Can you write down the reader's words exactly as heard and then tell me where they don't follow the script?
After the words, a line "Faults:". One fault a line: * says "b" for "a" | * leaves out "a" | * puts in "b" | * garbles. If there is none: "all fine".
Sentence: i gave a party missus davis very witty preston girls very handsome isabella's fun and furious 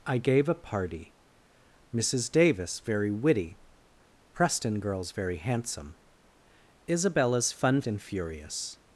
i gave a party missus davis very witty preston girls very handsome isabella's fun and furious
Faults:
all fine